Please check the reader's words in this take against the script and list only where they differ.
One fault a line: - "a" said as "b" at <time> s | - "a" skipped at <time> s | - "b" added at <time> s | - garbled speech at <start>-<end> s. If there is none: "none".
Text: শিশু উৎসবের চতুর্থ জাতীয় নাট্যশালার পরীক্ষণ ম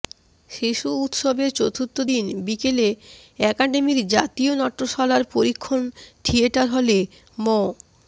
- "দিন বিকেলে একাডেমির" added at 2.1 s
- "থিয়েটার হলে" added at 6.2 s